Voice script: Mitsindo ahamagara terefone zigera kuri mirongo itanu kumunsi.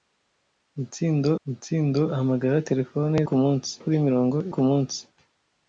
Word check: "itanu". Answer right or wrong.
wrong